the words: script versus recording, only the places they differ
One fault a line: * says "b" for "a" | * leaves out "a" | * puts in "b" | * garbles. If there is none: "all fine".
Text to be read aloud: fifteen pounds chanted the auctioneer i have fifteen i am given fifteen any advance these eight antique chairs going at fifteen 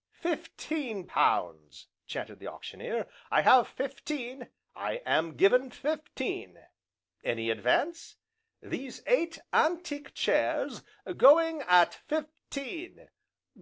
all fine